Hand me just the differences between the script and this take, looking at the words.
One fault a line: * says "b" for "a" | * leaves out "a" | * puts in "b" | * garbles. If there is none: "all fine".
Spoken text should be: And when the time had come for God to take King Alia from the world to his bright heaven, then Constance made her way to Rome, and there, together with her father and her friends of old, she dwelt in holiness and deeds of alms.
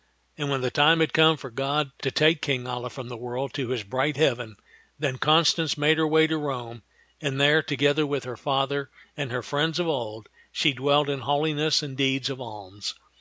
all fine